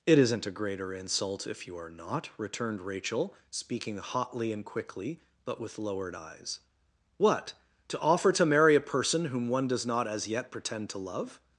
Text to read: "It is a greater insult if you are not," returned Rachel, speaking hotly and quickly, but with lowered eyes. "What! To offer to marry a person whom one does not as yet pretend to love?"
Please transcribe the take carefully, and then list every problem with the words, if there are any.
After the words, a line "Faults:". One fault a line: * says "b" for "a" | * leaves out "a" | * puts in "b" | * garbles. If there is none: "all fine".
"It isn't a greater insult if you are not," returned Rachel, speaking hotly and quickly, but with lowered eyes. "What! To offer to marry a person whom one does not as yet pretend to love?"
Faults:
* says "isn't" for "is"